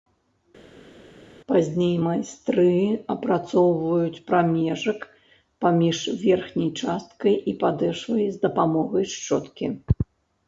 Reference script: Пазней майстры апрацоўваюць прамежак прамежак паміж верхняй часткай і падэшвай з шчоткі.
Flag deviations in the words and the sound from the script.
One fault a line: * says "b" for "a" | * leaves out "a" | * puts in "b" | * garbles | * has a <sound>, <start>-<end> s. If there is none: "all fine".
* leaves out "прамежак"
* puts in "дапамогай"